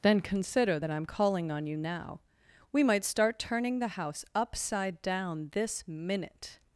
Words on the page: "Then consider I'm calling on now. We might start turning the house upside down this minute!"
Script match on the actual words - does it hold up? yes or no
no